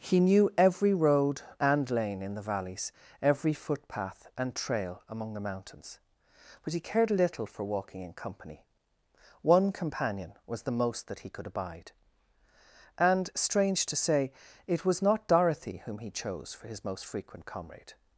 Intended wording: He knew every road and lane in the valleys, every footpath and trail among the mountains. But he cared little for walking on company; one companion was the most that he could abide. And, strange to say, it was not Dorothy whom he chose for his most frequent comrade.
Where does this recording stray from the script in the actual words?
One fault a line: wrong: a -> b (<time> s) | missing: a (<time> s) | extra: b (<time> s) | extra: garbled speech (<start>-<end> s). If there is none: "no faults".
wrong: on -> in (8.0 s)